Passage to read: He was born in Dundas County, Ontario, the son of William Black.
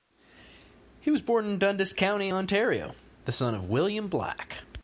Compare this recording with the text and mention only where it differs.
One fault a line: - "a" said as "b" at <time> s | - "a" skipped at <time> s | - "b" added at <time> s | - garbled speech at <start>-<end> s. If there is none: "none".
none